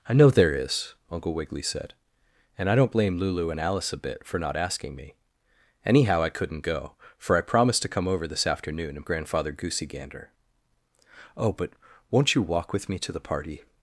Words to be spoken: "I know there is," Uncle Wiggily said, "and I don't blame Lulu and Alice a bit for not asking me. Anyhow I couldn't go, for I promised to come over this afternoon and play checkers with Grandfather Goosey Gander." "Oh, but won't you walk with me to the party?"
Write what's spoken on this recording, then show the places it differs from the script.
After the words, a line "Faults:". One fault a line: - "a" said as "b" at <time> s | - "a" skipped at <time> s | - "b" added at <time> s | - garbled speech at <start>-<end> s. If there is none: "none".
"I know there is," Uncle Wiggily said, "and I don't blame Lulu and Alice a bit for not asking me. Anyhow I couldn't go, for I promised to come over this afternoon and Grandfather Goosey Gander." "Oh, but won't you walk with me to the party?"
Faults:
- "play checkers with" skipped at 9.1 s